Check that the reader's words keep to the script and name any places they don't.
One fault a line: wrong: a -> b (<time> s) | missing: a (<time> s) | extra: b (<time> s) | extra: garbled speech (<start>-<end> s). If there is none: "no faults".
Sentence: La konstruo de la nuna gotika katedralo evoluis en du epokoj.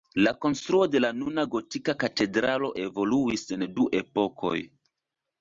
no faults